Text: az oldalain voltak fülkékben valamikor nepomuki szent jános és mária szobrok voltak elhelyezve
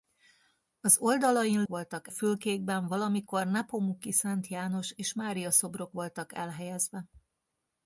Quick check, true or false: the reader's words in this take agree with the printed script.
true